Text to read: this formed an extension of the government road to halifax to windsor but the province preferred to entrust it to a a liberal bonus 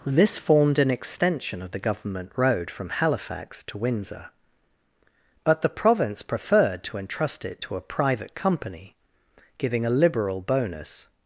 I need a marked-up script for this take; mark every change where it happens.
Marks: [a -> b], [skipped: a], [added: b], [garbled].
this formed an extension of the government road [to -> from] halifax to windsor but the province preferred to entrust it to a [added: private company giving] a liberal bonus